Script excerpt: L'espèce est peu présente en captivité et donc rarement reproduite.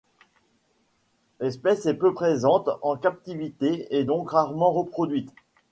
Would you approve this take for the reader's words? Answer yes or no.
yes